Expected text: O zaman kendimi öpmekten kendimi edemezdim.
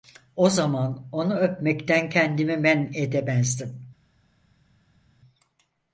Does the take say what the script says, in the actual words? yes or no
no